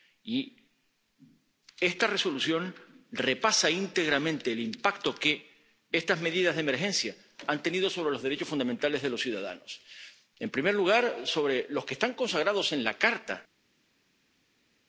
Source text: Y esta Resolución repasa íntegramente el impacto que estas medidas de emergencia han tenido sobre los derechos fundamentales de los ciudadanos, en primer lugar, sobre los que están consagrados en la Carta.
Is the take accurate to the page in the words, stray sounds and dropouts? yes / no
yes